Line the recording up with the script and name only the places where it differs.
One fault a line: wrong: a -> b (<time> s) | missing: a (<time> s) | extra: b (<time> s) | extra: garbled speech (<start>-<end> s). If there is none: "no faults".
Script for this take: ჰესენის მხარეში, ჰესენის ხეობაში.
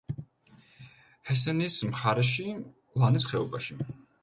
wrong: ჰესენის -> ლანის (3.0 s)